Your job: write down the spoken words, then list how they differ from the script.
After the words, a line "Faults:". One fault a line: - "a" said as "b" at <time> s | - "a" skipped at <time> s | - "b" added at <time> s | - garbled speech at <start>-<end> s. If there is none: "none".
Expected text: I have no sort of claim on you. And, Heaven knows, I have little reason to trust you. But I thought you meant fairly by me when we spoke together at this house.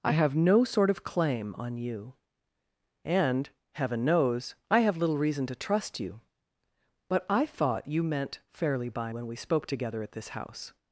I have no sort of claim on you. And, Heaven knows, I have little reason to trust you. But I thought you meant fairly by when we spoke together at this house.
Faults:
- "me" skipped at 9.1 s